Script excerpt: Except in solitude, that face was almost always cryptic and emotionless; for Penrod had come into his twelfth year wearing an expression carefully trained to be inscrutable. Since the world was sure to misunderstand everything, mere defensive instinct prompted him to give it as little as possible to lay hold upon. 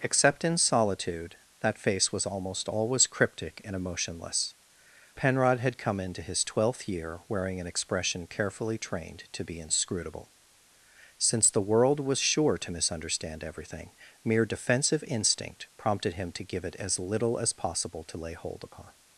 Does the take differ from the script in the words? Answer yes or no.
yes